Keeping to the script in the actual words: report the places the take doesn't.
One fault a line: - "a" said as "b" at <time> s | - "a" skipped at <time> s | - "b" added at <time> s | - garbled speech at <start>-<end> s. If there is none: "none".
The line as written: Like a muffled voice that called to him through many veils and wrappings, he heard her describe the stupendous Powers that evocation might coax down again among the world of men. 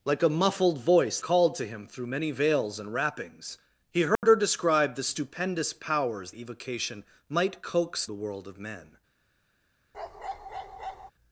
- "that" skipped at 1.2 s
- "that" skipped at 6.3 s
- "down again among" skipped at 8.0 s